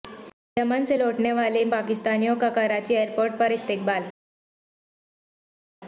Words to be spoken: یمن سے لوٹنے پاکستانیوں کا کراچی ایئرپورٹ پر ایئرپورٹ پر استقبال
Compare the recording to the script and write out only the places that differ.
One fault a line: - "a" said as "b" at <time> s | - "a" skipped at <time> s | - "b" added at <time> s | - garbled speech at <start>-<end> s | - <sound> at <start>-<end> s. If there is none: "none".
- "والے" added at 1.3 s
- "ایئرپورٹ پر" skipped at 3.5 s